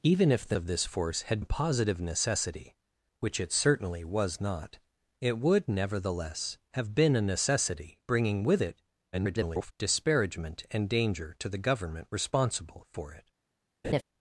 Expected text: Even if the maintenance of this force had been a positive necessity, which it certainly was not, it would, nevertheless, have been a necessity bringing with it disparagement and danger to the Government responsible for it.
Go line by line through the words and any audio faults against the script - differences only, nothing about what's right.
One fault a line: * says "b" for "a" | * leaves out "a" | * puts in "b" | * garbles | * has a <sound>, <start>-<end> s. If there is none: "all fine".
* leaves out "maintenance"
* leaves out "been"
* garbles
* has a laugh, 13.8-14.0 s